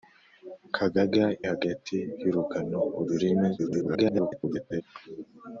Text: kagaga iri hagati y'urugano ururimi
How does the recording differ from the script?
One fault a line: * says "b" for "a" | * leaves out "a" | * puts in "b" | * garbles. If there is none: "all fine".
* leaves out "iri"
* garbles